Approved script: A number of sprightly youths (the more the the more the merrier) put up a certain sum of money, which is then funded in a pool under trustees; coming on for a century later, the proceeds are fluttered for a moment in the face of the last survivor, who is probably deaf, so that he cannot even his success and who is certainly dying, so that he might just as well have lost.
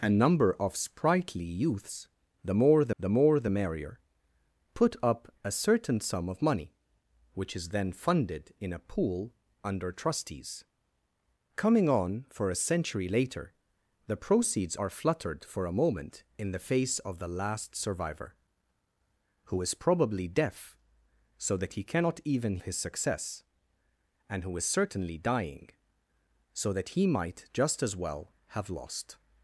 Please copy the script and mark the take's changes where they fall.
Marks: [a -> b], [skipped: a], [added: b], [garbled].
A number of sprightly youths (the more the the more the merrier) put up a certain sum of money, which is then funded in a pool under trustees; coming on for a century later, the proceeds are fluttered for a moment in the face of the last survivor, who is probably deaf, so that he cannot even his success and who is certainly dying, so that he might just as well have lost.